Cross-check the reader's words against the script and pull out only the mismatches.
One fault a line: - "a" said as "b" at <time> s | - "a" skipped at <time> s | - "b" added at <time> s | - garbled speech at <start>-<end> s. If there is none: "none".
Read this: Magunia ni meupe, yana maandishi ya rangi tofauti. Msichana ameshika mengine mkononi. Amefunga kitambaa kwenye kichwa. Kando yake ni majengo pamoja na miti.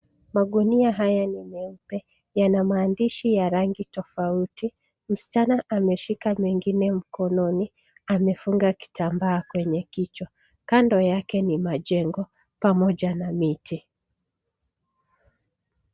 - "haya" added at 0.9 s